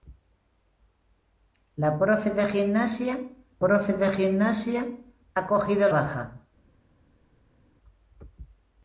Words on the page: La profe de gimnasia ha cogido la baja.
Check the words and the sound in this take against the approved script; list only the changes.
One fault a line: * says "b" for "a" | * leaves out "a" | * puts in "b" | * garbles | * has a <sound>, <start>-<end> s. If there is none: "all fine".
* puts in "profe de gimnasia"
* leaves out "la"